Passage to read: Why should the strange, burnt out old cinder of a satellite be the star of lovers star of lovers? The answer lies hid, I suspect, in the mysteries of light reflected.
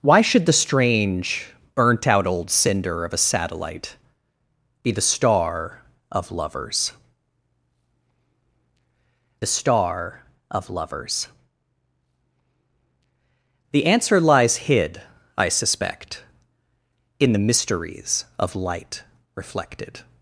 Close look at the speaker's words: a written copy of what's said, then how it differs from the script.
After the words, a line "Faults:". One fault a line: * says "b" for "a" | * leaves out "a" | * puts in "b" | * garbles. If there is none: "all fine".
Why should the strange, burnt out old cinder of a satellite be the star of lovers star of lovers? The answer lies hid, I suspect, in the mysteries of light reflected.
Faults:
all fine